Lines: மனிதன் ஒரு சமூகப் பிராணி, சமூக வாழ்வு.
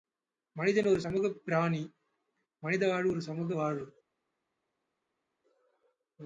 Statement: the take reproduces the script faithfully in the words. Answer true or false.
false